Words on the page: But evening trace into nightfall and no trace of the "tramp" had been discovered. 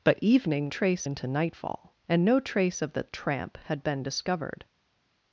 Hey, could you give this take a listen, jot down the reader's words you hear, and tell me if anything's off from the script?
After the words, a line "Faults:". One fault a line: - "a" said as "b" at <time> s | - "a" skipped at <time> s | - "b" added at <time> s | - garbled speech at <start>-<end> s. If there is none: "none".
But evening trace into nightfall and no trace of the "tramp" had been discovered.
Faults:
none